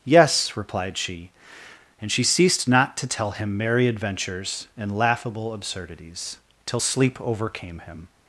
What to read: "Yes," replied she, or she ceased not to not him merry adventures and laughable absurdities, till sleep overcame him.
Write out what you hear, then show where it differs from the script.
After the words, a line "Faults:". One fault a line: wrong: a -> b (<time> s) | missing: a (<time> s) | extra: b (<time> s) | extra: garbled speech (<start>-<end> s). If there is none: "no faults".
"Yes," replied she, and she ceased not to tell him merry adventures and laughable absurdities, till sleep overcame him.
Faults:
wrong: or -> and (2.0 s)
wrong: not -> tell (3.1 s)